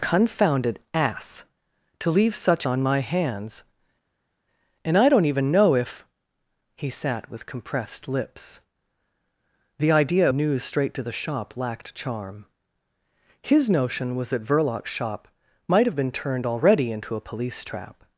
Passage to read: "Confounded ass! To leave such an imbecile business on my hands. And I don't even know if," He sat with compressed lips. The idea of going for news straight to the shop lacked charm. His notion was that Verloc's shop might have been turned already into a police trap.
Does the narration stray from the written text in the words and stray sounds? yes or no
yes